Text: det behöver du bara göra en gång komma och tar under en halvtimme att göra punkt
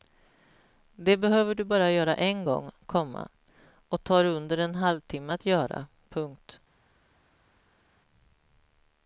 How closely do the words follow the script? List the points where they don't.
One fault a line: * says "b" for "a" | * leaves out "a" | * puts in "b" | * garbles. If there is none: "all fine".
all fine